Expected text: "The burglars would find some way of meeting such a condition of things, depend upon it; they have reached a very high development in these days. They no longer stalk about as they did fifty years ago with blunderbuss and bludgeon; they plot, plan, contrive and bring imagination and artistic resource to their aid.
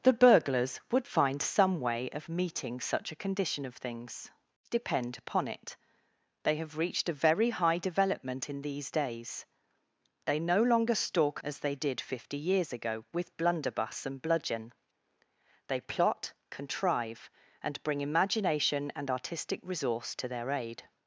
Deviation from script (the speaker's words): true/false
true